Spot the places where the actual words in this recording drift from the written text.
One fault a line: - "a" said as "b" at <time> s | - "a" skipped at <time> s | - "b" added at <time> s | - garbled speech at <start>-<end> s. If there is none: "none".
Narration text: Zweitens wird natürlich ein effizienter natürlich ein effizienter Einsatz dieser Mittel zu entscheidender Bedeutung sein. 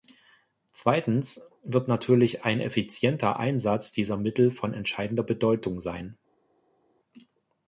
- "natürlich ein effizienter" skipped at 3.4 s
- "zu" said as "von" at 4.5 s